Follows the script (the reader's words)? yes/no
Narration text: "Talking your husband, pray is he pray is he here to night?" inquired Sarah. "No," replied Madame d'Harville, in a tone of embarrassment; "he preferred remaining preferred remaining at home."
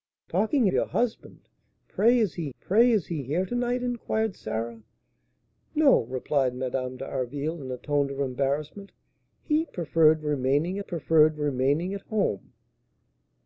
yes